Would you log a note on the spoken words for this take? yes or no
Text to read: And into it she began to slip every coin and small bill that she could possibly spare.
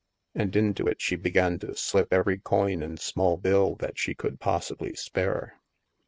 no